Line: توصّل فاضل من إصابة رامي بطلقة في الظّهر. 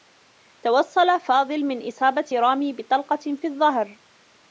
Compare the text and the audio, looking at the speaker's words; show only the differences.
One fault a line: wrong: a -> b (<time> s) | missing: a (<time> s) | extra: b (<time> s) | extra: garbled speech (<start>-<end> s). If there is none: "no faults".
no faults